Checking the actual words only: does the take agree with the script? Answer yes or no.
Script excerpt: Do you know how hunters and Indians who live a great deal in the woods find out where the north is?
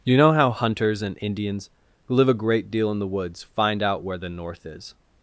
no